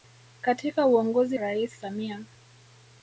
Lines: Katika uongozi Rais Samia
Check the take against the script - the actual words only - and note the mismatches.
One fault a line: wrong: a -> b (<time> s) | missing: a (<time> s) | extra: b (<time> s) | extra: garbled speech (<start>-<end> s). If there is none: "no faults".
no faults